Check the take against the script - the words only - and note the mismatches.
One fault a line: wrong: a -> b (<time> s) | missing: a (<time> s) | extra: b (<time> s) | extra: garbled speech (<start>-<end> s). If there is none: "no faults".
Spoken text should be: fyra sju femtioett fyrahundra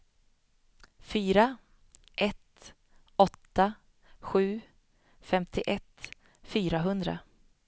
extra: ett åtta (2.2 s)